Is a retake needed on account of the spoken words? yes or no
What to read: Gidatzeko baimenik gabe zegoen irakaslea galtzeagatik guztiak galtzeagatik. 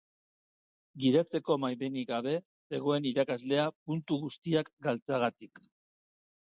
yes